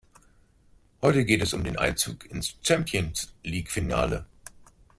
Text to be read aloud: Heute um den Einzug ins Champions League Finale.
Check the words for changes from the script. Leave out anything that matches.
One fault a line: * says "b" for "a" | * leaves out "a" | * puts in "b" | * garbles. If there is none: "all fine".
* puts in "geht es"